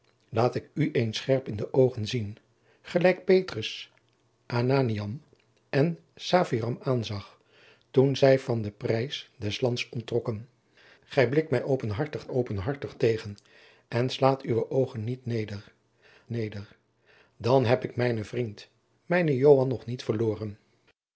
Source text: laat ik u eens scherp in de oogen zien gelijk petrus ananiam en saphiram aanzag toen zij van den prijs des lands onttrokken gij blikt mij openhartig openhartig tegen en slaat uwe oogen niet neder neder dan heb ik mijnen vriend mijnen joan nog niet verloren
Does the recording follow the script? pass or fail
pass